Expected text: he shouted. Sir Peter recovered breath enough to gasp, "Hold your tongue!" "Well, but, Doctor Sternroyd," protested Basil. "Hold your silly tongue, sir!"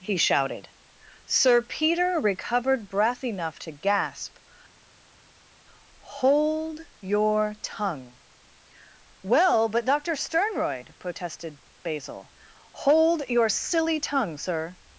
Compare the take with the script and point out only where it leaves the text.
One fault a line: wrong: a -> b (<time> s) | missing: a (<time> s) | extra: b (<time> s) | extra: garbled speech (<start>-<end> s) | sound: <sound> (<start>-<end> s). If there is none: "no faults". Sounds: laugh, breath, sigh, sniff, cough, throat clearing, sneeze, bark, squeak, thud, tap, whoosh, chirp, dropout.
no faults